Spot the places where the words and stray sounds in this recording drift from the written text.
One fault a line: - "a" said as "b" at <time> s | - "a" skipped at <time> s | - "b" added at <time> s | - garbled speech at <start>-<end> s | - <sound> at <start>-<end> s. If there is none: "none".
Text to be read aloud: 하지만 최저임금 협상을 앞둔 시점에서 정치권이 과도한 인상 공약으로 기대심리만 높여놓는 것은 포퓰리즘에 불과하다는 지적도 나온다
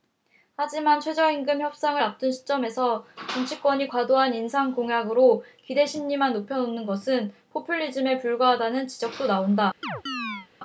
- chirp at 9.8-10.5 s